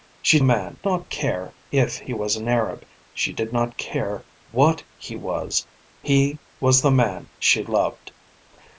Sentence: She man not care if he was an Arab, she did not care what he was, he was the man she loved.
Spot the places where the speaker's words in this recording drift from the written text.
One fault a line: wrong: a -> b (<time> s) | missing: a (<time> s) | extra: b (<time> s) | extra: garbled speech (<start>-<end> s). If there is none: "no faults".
no faults